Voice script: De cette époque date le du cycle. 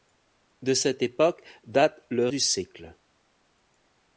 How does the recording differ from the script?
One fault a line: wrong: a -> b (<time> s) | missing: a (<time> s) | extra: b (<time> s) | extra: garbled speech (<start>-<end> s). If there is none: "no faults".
no faults